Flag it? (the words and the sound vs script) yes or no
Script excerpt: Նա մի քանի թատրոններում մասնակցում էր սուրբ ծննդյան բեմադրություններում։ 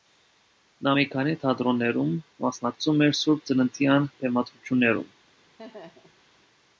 yes